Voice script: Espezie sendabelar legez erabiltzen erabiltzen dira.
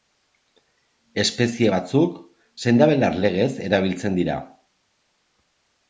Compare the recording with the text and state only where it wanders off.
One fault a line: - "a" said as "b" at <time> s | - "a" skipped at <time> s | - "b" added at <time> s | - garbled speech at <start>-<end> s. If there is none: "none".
- "batzuk" added at 1.7 s
- "erabiltzen" skipped at 4.2 s